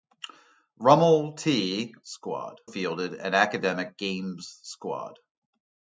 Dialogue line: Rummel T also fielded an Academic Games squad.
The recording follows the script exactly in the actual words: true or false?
false